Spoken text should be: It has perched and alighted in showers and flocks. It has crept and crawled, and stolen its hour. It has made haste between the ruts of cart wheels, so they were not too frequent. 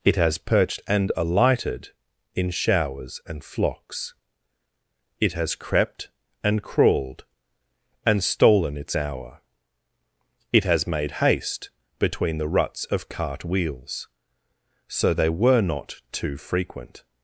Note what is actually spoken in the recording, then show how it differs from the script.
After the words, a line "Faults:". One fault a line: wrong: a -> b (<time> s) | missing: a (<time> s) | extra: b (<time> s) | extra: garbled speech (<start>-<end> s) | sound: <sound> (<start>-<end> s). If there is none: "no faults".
It has perched and alighted in showers and flocks. It has crept and crawled, and stolen its hour. It has made haste between the ruts of cart wheels, so they were not too frequent.
Faults:
no faults